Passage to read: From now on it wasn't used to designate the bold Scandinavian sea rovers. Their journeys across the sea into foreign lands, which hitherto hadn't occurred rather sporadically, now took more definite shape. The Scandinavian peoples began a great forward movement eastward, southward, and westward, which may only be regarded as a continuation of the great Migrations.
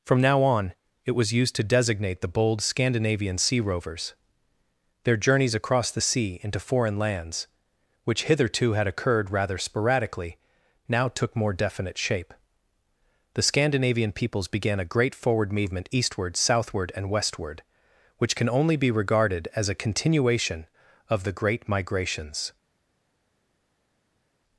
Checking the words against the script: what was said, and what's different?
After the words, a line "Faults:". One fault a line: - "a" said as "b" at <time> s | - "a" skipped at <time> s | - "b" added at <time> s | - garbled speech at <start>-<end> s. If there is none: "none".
From now on it was used to designate the bold Scandinavian sea rovers. Their journeys across the sea into foreign lands, which hitherto had occurred rather sporadically, now took more definite shape. The Scandinavian peoples began a great forward movement eastward, southward, and westward, which can only be regarded as a continuation of the great Migrations.
Faults:
- "wasn't" said as "was" at 1.1 s
- "hadn't" said as "had" at 8.7 s
- "may" said as "can" at 18.4 s